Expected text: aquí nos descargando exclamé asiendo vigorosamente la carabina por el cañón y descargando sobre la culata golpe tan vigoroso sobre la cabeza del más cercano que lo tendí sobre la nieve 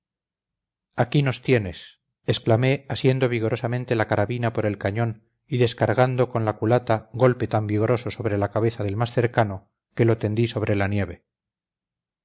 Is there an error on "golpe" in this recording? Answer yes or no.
no